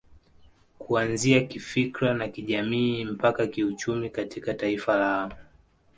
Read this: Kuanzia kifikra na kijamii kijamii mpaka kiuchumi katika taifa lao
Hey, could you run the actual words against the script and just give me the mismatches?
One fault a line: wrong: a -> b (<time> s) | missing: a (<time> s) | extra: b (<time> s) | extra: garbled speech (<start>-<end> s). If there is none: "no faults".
missing: kijamii (3.0 s)